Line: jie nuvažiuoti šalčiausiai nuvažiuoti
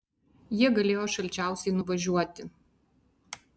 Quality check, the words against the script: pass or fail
fail